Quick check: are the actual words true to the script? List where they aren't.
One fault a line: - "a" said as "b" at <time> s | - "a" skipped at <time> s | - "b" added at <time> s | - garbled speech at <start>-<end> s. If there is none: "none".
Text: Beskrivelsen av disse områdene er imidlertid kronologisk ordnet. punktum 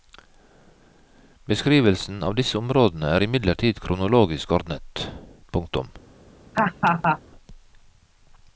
none